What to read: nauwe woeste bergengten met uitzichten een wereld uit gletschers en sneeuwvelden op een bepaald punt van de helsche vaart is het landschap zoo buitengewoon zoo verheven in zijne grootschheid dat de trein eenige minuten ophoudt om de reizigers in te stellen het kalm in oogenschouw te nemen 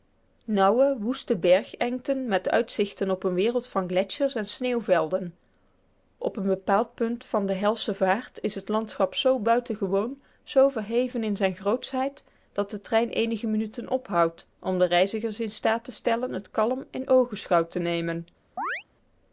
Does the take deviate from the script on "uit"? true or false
true